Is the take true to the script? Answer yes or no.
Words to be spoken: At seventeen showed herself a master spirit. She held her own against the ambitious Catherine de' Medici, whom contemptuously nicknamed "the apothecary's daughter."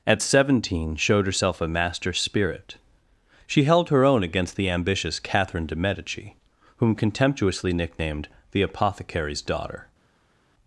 yes